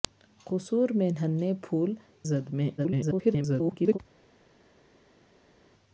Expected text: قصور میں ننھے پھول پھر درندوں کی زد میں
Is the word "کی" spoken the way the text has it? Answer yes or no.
no